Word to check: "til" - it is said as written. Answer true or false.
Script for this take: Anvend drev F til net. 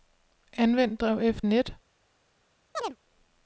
false